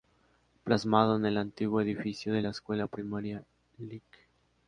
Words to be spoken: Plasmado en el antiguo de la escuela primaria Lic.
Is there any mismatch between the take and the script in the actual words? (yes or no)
yes